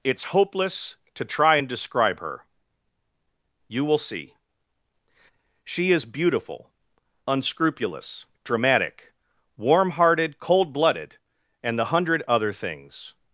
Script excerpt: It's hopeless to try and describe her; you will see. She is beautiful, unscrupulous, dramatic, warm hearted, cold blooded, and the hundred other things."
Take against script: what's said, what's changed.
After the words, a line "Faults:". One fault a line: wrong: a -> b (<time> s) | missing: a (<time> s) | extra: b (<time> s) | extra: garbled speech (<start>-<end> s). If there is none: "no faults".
It's hopeless to try and describe her; you will see. She is beautiful, unscrupulous, dramatic, warm hearted, cold blooded, and the hundred other things."
Faults:
no faults